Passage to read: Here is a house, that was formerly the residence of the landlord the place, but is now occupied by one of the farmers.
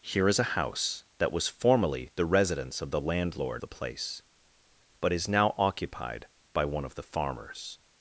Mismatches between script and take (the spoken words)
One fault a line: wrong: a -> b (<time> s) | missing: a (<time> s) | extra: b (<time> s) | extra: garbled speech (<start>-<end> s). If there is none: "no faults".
no faults